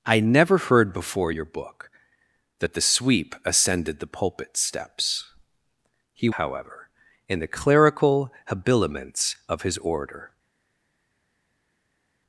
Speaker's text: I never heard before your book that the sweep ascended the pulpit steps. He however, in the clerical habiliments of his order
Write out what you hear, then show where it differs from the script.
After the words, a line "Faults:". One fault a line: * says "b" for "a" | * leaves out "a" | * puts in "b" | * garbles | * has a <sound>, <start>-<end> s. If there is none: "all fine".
I never heard before your book that the sweep ascended the pulpit steps. He however, in the clerical habiliments of his order
Faults:
all fine